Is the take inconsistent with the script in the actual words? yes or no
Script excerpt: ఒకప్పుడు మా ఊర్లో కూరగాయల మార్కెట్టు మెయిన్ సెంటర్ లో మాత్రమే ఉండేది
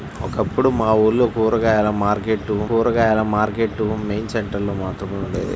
yes